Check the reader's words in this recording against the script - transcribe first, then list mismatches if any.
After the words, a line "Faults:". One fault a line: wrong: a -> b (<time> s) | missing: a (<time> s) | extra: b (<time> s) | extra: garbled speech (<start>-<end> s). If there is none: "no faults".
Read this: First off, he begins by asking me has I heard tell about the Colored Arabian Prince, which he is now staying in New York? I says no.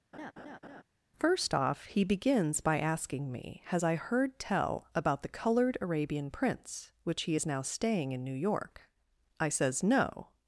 First off, he begins by asking me has I heard tell about the Colored Arabian Prince, which he is now staying in New York? I says no.
Faults:
no faults